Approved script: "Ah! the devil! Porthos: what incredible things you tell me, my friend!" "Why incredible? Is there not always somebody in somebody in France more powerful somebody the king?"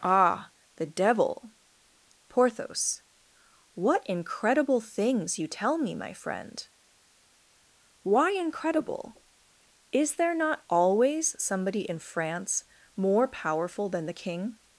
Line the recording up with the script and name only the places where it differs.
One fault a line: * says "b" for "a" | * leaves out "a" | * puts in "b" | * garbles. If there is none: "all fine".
* leaves out "somebody in"
* says "than" for "somebody"